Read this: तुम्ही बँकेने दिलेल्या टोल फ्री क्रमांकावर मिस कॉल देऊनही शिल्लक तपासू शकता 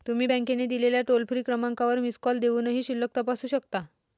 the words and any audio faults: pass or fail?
pass